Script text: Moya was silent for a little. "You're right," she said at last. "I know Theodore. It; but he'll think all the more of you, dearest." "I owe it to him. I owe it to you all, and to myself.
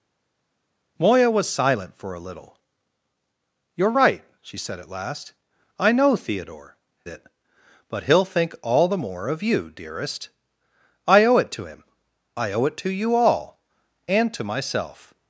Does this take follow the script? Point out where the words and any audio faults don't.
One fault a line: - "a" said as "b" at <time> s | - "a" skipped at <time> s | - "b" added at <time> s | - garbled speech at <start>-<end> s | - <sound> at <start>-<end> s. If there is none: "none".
none